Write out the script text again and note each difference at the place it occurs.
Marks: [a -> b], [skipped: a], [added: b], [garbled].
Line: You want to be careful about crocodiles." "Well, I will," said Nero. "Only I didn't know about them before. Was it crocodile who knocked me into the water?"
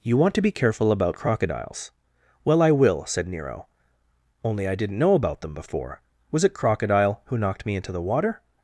You want to be careful about crocodiles." "Well, I will," said Nero. "Only I didn't know about them before. Was it crocodile who knocked me into the water?"